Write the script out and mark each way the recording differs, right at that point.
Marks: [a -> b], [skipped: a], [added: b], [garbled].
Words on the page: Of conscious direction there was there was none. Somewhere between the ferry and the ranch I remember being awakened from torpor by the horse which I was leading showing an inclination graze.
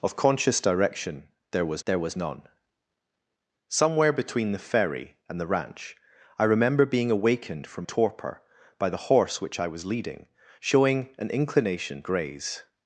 Of conscious direction there was there was none. Somewhere between the ferry and the ranch I remember being awakened from torpor by the horse which I was leading showing an inclination graze.